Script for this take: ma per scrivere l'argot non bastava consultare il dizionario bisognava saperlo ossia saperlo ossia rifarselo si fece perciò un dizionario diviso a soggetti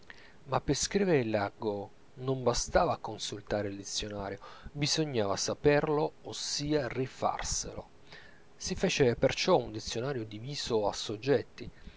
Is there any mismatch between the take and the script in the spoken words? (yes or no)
yes